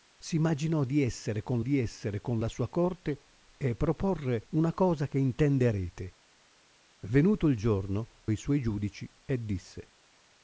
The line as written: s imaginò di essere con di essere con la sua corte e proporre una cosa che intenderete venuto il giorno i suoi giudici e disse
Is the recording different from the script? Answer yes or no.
no